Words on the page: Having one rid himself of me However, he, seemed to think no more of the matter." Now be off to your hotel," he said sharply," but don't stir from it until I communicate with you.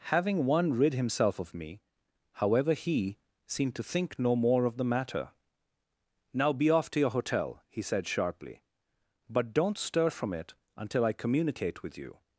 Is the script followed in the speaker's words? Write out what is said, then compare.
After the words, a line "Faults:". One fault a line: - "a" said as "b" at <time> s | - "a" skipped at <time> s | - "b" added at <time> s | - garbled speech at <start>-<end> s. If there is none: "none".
Having one rid himself of me However, he, seemed to think no more of the matter." Now be off to your hotel," he said sharply," but don't stir from it until I communicate with you.
Faults:
none